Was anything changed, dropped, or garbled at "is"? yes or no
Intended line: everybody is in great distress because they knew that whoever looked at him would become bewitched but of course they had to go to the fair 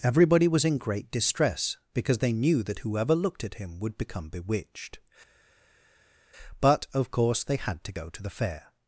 yes